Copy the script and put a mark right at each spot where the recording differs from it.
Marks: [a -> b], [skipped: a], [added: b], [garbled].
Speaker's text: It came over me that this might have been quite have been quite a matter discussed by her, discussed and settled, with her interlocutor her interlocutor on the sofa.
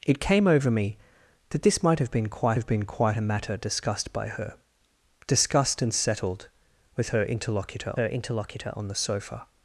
It came over me that this might have been quite have been quite a matter discussed by her, discussed and settled, with her interlocutor her interlocutor on the sofa.